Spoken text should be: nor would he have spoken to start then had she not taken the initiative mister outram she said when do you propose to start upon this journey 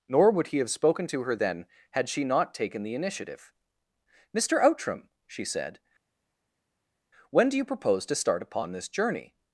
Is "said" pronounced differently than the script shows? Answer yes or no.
no